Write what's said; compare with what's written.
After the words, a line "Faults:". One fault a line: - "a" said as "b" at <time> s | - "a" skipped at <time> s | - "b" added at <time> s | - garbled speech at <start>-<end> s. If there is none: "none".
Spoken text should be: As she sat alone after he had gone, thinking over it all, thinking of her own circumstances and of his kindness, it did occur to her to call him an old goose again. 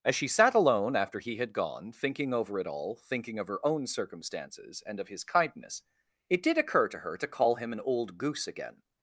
As she sat alone after he had gone, thinking over it all, thinking of her own circumstances and of his kindness, it did occur to her to call him an old goose again.
Faults:
none